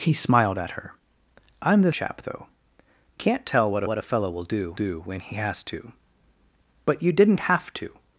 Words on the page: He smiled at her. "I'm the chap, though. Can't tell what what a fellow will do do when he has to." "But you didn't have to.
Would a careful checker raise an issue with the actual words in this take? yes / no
no